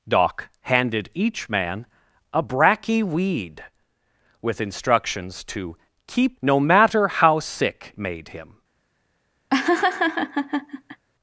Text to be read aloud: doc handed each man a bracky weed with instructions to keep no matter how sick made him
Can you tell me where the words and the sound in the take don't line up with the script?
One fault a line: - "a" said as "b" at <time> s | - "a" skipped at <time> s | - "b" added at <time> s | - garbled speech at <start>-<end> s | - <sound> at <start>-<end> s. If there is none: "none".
- laugh at 9.5-11.0 s